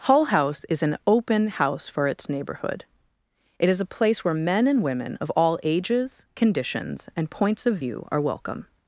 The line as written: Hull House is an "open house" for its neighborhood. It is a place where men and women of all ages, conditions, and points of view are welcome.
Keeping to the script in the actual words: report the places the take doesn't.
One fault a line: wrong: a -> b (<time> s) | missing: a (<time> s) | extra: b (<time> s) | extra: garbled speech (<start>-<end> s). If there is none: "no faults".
no faults